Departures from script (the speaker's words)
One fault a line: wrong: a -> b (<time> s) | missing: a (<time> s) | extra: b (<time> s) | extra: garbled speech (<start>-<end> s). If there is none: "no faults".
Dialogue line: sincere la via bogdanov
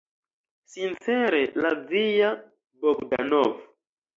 no faults